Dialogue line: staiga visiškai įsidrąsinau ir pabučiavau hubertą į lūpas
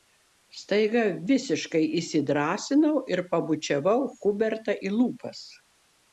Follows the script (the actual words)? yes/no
yes